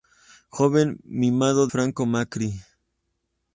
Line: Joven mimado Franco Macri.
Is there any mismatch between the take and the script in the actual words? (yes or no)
no